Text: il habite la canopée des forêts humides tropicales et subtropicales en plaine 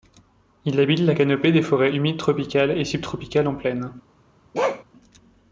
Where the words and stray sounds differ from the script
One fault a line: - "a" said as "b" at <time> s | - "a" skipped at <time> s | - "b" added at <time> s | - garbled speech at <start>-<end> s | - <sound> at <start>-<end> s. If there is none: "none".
- bark at 4.5-4.8 s